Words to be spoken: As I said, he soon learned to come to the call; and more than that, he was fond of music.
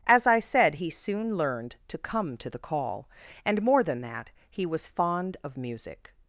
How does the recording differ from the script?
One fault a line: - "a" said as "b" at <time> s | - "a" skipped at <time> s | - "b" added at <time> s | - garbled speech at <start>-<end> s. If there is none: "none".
none